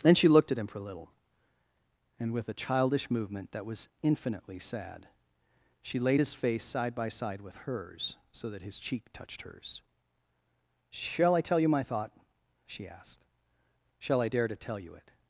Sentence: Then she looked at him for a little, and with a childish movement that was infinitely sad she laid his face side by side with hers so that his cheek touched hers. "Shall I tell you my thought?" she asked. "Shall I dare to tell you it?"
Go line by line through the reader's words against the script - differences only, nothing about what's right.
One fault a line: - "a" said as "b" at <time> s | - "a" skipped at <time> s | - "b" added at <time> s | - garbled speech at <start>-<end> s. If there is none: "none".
none